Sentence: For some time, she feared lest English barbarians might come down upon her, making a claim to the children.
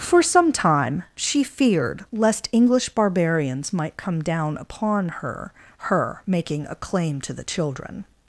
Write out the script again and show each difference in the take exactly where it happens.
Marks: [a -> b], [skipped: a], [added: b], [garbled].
For some time, she feared lest English barbarians might come down upon her, [added: her] making a claim to the children.